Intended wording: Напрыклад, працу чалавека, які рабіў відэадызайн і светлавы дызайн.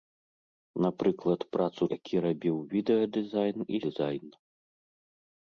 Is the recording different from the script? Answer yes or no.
yes